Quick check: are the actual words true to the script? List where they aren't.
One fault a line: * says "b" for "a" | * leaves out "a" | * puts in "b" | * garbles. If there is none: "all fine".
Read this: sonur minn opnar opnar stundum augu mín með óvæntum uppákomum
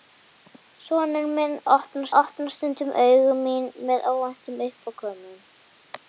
all fine